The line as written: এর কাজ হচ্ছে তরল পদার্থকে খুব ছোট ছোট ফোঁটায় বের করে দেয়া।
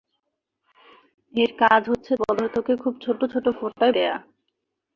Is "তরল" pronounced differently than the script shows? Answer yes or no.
yes